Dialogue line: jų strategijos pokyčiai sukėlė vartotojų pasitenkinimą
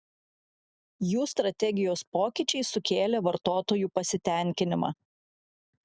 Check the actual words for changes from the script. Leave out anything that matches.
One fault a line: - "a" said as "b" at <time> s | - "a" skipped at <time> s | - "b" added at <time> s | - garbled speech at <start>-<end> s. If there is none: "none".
none